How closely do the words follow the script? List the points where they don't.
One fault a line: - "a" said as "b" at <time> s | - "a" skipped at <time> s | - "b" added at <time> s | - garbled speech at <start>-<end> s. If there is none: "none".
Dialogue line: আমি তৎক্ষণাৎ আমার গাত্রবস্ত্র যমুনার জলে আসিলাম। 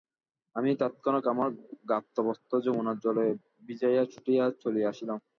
- "ভিজাইয়া ছুটিয়া চলিয়া" added at 3.7 s